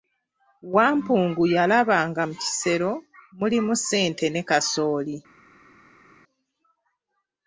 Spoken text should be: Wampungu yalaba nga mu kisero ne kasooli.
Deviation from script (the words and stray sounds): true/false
true